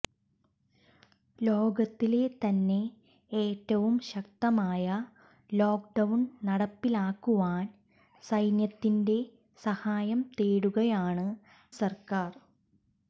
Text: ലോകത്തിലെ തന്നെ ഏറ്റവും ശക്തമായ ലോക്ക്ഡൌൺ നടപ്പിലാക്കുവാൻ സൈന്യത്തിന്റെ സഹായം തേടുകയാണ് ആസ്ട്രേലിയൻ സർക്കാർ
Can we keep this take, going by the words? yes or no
no